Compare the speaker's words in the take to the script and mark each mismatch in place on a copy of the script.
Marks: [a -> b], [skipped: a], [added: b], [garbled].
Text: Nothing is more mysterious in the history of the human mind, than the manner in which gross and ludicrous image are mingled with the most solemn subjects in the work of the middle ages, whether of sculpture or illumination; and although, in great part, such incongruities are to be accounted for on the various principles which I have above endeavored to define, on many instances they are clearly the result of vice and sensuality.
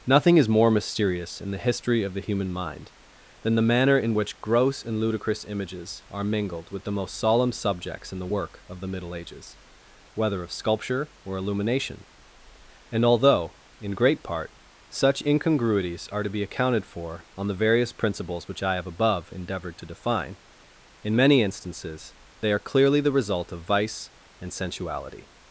Nothing is more mysterious in the history of the human mind, than the manner in which gross and ludicrous [image -> images] are mingled with the most solemn subjects in the work of the middle ages, whether of sculpture or illumination; and although, in great part, such incongruities are to be accounted for on the various principles which I have above endeavored to define, [on -> in] many instances they are clearly the result of vice and sensuality.